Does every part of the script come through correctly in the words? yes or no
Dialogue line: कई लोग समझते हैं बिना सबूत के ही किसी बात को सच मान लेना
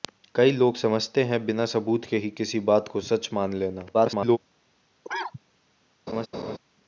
no